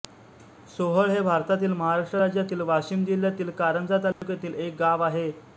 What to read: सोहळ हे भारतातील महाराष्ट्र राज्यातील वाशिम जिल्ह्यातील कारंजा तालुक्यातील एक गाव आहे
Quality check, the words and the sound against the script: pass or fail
fail